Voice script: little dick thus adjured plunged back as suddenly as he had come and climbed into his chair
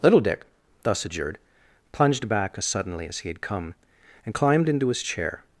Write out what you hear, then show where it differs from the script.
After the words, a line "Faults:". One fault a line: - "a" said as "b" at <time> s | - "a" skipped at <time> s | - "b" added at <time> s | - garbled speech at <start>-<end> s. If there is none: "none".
little dick thus adjured plunged back as suddenly as he had come and climbed into his chair
Faults:
none